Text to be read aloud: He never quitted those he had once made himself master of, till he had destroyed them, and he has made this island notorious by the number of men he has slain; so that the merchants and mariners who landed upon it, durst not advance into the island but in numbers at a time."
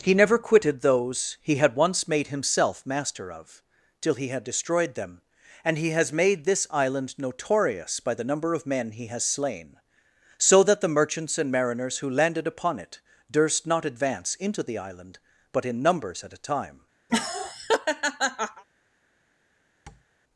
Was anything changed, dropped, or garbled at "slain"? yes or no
no